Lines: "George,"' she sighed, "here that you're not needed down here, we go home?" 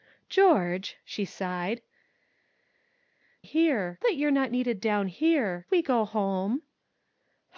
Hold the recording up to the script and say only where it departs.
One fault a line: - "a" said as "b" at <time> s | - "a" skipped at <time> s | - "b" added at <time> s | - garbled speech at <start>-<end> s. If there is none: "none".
none